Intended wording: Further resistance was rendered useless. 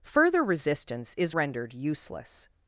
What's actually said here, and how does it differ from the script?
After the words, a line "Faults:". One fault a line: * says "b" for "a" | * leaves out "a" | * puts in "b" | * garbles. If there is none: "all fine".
Further resistance is rendered useless.
Faults:
* says "is" for "was"